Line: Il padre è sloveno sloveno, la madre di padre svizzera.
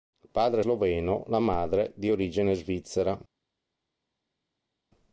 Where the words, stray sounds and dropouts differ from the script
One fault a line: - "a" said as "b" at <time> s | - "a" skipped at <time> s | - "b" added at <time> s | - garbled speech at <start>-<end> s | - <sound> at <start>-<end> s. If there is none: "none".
- "sloveno" skipped at 1.2 s
- "padre" said as "origine" at 2.1 s